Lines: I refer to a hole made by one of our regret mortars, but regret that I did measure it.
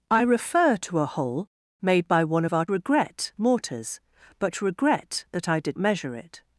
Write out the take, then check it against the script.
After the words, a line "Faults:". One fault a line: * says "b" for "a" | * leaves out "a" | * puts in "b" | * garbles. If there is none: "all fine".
I refer to a hole made by one of our regret mortars, but regret that I did measure it.
Faults:
all fine